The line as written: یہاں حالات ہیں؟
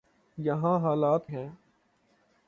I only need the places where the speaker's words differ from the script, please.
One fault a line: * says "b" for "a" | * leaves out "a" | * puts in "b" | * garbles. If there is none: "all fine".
all fine